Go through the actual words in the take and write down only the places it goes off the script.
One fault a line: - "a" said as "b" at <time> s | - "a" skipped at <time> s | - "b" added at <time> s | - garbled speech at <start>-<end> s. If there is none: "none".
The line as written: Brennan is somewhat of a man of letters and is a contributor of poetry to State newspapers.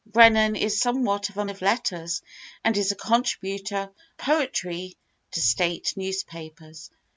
- "man" skipped at 1.4 s
- "of" skipped at 3.9 s